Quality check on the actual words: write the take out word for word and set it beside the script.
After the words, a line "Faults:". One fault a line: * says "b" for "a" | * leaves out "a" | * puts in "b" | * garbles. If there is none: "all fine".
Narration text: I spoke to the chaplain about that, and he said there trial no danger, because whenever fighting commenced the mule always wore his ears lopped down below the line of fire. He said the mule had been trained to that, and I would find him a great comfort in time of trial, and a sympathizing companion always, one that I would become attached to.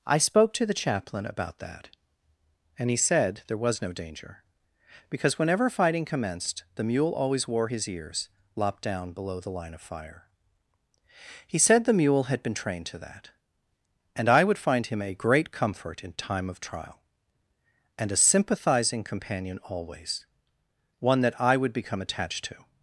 I spoke to the chaplain about that, and he said there was no danger, because whenever fighting commenced the mule always wore his ears lopped down below the line of fire. He said the mule had been trained to that, and I would find him a great comfort in time of trial, and a sympathizing companion always, one that I would become attached to.
Faults:
* says "was" for "trial"